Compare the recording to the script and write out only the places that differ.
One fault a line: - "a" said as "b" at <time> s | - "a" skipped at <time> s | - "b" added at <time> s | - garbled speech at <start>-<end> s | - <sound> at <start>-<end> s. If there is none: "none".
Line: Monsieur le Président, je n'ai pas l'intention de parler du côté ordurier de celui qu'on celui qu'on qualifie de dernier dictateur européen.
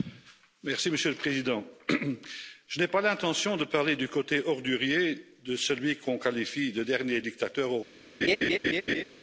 - "celui qu'on" skipped at 6.2 s
- laugh at 8.2-9.0 s